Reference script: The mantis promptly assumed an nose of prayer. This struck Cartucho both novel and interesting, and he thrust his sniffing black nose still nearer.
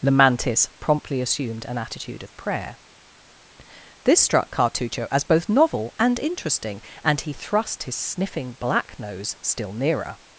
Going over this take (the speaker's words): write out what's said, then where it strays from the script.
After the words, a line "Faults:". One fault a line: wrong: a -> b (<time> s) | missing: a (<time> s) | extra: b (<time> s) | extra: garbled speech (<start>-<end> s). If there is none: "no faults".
The mantis promptly assumed an attitude of prayer. This struck Cartucho as both novel and interesting, and he thrust his sniffing black nose still nearer.
Faults:
wrong: nose -> attitude (1.8 s)
extra: as (5.1 s)